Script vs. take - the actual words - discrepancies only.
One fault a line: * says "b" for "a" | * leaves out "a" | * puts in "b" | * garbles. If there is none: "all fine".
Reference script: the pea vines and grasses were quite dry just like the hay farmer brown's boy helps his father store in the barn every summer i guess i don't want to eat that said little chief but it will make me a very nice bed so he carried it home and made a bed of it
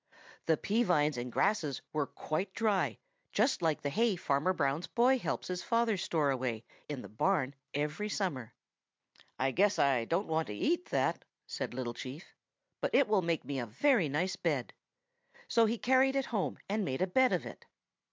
* puts in "away"